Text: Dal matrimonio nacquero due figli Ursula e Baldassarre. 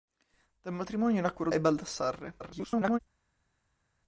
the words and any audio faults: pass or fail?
fail